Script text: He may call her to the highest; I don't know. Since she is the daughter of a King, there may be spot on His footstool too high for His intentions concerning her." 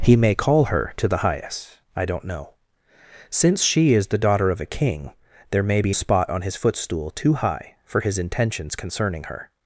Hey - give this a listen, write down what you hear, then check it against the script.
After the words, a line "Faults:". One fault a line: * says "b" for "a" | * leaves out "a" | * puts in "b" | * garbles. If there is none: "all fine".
He may call her to the highest; I don't know. Since she is the daughter of a King, there may be spot on His footstool too high for His intentions concerning her."
Faults:
all fine